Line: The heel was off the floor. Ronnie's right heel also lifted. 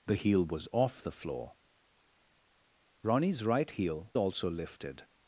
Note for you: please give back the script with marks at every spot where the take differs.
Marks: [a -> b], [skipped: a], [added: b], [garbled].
The heel was off the floor. Ronnie's right heel also lifted.